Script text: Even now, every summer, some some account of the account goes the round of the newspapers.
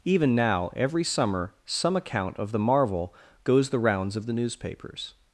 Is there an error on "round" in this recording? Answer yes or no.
yes